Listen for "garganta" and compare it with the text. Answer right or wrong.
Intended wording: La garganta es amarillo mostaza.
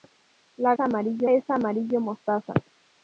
wrong